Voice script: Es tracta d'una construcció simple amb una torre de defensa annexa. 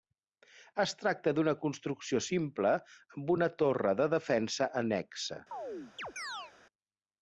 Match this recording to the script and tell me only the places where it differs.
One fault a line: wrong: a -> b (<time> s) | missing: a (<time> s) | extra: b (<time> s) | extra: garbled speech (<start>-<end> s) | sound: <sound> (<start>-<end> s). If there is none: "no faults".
sound: chirp (5.5-6.5 s)